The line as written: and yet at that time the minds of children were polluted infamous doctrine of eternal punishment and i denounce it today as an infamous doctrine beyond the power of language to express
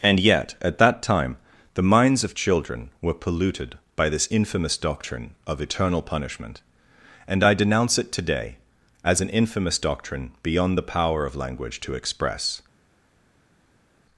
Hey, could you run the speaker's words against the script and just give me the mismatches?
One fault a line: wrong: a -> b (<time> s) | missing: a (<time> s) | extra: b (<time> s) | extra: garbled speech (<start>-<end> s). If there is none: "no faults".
extra: by this (4.0 s)